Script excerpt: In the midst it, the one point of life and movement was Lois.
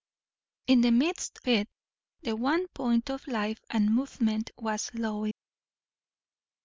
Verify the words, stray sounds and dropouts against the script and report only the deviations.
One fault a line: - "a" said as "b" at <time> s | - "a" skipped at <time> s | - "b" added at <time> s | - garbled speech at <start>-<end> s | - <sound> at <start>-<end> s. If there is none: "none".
none